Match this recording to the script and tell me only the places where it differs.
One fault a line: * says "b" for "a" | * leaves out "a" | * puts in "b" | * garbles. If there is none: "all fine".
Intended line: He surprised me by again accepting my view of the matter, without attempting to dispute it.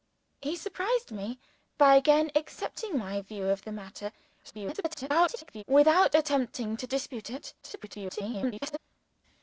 * garbles
* garbles